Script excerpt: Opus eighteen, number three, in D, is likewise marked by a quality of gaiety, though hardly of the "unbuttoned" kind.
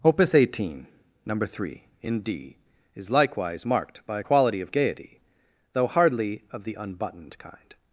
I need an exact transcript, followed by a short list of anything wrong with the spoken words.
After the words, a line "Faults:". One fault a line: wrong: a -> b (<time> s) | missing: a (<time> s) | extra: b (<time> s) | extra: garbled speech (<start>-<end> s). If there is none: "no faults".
Opus eighteen, number three, in D, is likewise marked by a quality of gaiety, though hardly of the "unbuttoned" kind.
Faults:
no faults